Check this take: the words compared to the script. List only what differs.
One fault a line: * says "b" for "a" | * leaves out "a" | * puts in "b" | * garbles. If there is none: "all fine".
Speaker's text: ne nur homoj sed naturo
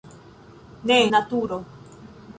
* leaves out "nur homoj sed"